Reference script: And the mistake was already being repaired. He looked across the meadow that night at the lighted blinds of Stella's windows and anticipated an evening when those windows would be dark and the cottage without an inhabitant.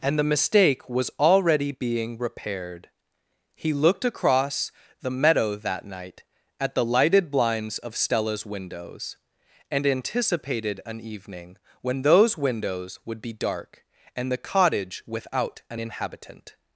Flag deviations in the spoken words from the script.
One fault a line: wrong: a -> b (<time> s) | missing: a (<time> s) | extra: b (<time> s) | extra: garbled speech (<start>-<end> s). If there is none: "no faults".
no faults